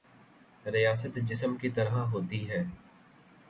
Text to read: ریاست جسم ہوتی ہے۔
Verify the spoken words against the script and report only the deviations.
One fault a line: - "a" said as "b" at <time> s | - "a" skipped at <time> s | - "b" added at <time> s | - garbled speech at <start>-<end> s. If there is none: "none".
- "کی طرح" added at 1.6 s